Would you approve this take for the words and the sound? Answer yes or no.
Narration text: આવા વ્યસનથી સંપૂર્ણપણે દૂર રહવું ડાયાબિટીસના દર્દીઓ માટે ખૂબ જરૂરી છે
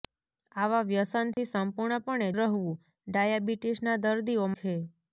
no